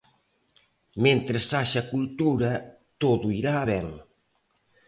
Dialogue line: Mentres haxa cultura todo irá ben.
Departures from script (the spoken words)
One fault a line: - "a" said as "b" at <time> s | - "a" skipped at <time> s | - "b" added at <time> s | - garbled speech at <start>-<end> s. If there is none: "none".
none